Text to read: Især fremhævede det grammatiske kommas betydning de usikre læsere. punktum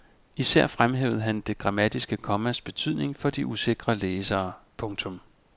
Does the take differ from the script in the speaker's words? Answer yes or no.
yes